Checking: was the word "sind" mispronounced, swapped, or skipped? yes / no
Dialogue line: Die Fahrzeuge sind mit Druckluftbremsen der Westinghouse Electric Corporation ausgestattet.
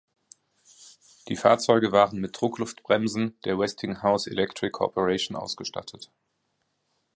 yes